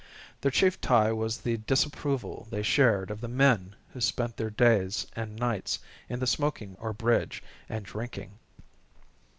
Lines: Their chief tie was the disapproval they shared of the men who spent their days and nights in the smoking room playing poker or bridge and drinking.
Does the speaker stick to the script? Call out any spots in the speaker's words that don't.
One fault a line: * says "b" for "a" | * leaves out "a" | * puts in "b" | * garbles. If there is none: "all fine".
* leaves out "room playing poker"